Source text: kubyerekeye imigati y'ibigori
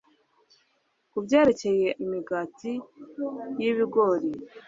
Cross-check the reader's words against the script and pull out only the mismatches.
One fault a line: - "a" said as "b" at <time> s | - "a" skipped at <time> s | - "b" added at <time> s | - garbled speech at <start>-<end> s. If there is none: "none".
none